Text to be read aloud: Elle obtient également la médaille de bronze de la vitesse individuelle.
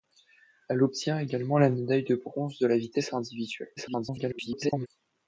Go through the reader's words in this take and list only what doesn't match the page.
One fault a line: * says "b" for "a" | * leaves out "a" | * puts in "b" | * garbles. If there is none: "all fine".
* garbles